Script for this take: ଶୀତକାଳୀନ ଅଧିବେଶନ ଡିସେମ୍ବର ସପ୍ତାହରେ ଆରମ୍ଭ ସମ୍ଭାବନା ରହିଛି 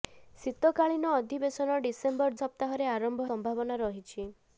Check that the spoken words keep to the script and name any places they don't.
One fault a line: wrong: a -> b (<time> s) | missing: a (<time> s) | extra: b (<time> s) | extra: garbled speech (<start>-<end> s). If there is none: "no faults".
no faults